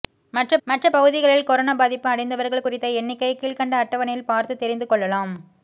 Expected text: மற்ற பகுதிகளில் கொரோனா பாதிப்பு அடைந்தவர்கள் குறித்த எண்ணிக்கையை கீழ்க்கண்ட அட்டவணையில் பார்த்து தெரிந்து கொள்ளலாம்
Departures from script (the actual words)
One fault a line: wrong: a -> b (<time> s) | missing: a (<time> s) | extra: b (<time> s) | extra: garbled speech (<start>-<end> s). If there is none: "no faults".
extra: மற்ற (0.7 s)